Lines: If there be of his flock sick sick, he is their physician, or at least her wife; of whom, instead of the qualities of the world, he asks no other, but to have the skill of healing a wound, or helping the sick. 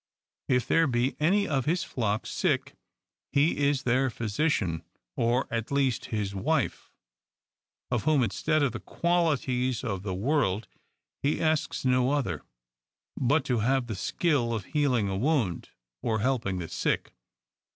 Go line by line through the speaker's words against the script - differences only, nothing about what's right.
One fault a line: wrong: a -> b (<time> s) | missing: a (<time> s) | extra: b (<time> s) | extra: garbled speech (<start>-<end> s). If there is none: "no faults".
extra: any (1.2 s)
missing: sick (2.8 s)
wrong: her -> his (6.1 s)